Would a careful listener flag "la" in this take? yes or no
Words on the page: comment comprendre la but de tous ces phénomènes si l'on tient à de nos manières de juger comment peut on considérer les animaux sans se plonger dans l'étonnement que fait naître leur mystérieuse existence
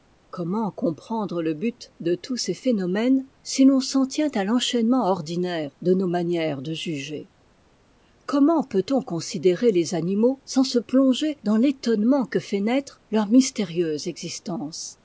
yes